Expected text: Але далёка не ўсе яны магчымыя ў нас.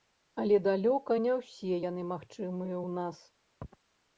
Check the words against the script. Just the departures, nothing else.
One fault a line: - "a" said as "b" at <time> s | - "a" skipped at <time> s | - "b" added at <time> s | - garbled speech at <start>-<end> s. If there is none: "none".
none